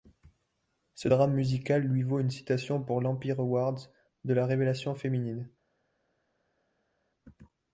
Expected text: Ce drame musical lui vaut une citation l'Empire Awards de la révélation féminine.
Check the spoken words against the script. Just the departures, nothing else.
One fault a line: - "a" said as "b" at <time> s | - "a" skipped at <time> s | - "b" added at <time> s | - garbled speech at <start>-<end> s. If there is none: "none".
- "pour" added at 2.8 s